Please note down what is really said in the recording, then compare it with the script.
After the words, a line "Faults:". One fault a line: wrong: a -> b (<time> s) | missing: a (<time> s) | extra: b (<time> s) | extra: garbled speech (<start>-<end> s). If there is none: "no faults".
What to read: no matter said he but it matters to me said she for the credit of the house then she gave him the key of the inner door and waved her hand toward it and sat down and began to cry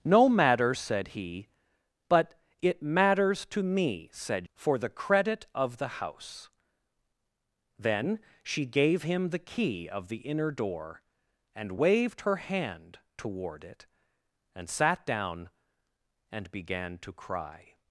no matter said he but it matters to me said for the credit of the house then she gave him the key of the inner door and waved her hand toward it and sat down and began to cry
Faults:
missing: she (4.5 s)